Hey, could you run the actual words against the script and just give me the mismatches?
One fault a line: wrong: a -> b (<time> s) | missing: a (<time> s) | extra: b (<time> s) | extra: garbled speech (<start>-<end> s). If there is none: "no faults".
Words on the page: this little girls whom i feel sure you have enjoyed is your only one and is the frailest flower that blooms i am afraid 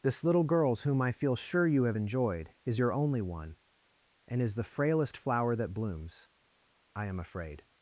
no faults